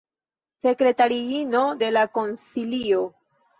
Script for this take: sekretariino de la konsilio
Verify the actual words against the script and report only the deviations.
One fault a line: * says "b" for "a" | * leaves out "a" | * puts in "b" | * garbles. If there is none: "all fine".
all fine